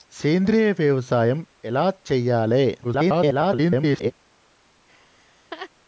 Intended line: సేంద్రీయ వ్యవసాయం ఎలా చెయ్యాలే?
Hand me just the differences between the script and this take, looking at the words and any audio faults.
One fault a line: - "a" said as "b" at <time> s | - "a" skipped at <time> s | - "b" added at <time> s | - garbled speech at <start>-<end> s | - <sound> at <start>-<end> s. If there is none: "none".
- garbled speech at 2.8-4.1 s
- laugh at 4.9-5.7 s